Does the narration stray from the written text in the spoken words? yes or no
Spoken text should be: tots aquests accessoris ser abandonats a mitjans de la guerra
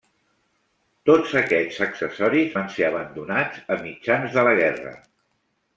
yes